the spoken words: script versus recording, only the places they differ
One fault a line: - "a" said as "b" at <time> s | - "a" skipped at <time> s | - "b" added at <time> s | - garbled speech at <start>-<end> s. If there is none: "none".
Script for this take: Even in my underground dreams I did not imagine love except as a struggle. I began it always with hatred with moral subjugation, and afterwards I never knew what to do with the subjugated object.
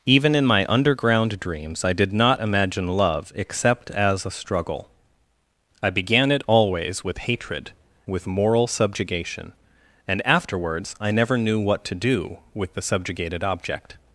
none